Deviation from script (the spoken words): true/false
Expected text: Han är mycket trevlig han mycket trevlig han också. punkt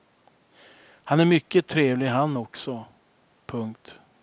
true